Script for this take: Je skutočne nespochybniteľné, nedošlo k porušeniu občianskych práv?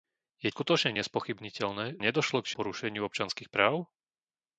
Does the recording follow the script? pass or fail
pass